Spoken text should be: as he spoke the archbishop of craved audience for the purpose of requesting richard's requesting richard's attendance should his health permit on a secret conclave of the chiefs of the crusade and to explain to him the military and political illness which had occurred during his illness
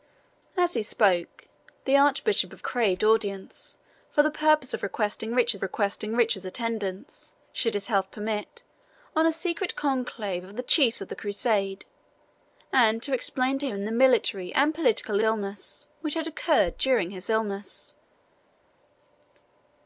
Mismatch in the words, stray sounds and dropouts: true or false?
false